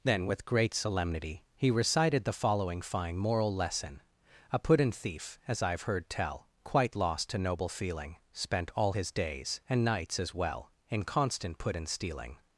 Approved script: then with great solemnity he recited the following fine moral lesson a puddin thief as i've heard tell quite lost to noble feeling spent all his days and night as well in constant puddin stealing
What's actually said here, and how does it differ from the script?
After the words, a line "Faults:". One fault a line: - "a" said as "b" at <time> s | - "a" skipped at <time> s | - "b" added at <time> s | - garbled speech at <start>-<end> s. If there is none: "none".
then with great solemnity he recited the following fine moral lesson a puddin thief as i've heard tell quite lost to noble feeling spent all his days and nights as well in constant puddin stealing
Faults:
- "night" said as "nights" at 9.8 s